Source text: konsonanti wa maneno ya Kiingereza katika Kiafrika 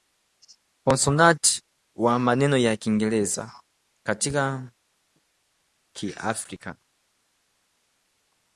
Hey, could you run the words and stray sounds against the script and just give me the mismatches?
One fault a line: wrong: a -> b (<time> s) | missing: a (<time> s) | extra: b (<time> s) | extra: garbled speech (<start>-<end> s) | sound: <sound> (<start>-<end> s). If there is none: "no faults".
no faults